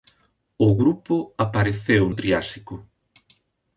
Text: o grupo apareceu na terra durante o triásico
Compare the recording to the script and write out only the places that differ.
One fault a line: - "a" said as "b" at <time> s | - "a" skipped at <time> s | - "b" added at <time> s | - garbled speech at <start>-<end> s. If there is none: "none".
- "na terra durante" skipped at 2.0 s